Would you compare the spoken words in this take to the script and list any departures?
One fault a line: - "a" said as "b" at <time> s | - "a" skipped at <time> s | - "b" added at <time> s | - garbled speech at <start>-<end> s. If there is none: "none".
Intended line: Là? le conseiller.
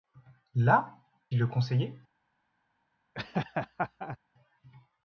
none